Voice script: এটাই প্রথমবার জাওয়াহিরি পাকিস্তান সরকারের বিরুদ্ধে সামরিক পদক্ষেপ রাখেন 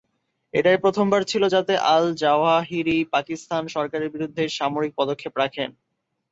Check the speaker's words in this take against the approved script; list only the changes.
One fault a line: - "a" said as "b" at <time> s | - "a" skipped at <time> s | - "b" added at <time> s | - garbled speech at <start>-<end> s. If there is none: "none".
- "ছিল যাতে আল" added at 1.2 s